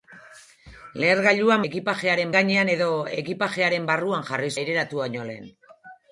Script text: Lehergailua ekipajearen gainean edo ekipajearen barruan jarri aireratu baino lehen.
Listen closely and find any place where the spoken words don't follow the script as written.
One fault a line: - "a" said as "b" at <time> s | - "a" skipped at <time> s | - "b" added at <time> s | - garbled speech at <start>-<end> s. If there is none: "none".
none